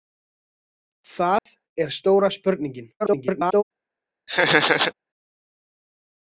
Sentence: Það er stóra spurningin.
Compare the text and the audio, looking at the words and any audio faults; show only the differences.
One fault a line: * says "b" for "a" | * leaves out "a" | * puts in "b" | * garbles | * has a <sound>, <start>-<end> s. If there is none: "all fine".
* has a dropout, 1.4-1.5 s
* garbles
* has a laugh, 4.3-4.9 s